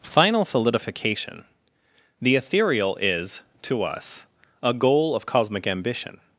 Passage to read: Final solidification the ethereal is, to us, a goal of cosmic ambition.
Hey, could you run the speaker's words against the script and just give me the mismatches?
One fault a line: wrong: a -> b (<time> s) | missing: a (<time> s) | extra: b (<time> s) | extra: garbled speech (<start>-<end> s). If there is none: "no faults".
no faults